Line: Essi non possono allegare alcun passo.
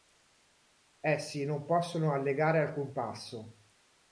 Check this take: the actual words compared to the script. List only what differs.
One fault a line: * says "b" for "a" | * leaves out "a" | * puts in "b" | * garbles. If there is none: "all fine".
all fine